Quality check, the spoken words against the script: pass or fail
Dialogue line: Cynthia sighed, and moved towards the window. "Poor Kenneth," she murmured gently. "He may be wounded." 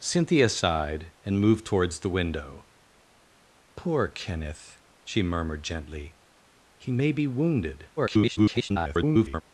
fail